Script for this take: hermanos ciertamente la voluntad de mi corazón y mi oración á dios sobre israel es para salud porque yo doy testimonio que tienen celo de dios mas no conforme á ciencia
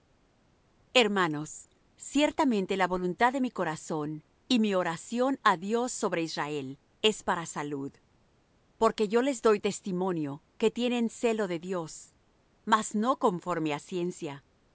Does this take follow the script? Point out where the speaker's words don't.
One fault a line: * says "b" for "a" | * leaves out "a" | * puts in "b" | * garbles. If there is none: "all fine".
* puts in "les"